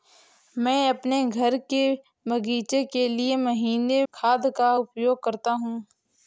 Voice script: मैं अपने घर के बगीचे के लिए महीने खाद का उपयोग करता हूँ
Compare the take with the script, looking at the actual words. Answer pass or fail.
pass